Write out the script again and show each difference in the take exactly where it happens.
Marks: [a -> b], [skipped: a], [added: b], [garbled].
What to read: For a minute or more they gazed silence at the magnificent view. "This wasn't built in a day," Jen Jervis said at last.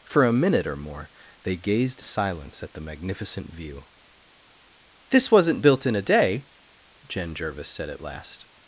For a minute or more they gazed silence at the magnificent view. "This wasn't built in a day," Jen Jervis said at last.